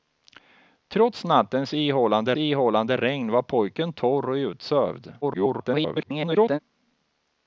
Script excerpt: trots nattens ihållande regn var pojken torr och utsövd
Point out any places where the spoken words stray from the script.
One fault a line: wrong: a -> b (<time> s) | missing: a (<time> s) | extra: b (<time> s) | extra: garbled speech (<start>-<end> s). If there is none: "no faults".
extra: ihållande (2.4 s)
extra: garbled speech (5.2-6.6 s)